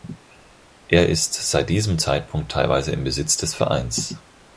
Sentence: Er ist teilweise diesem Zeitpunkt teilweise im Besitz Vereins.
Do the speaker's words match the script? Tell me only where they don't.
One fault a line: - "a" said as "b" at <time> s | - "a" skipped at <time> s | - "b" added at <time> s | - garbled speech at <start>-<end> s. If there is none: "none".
- "teilweise" said as "seit" at 1.4 s
- "des" added at 3.4 s